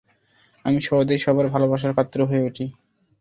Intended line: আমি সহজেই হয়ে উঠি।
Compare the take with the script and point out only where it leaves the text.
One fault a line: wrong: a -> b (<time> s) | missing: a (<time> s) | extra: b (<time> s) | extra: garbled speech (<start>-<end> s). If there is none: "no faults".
extra: সবার ভালোবাসার পাত্র (1.2 s)